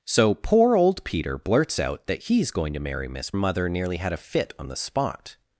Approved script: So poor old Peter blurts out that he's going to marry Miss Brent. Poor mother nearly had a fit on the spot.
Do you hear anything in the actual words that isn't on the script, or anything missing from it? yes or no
yes